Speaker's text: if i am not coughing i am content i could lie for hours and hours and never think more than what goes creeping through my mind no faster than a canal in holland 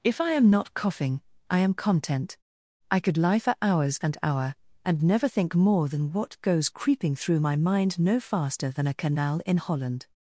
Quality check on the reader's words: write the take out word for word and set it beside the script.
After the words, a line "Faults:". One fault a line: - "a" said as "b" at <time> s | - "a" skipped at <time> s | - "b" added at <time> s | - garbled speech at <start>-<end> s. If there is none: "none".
if i am not coughing i am content i could lie for hours and hour and never think more than what goes creeping through my mind no faster than a canal in holland
Faults:
- "hours" said as "hour" at 4.2 s